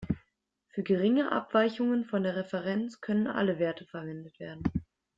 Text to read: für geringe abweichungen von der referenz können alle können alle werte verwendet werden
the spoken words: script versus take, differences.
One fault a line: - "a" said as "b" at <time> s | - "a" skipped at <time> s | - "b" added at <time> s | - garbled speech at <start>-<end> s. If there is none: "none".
- "können alle" skipped at 3.6 s